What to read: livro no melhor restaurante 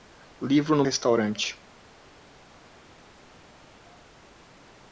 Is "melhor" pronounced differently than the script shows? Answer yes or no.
yes